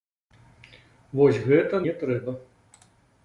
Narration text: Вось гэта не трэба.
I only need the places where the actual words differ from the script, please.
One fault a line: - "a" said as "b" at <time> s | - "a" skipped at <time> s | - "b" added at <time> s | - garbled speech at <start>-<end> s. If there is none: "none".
none